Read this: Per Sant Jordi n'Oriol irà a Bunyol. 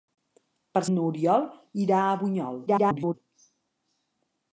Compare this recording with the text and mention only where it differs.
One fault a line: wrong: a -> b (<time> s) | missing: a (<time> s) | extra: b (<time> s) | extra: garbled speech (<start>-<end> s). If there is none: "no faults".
missing: Sant Jordi (0.8 s)
extra: garbled speech (2.7-3.1 s)